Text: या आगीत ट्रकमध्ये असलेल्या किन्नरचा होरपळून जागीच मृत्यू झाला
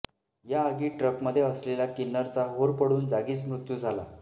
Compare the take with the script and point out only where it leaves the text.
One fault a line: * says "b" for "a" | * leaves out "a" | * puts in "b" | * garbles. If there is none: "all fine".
all fine